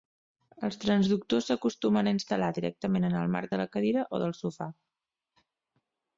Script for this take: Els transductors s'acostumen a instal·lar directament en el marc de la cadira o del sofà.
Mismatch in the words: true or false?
false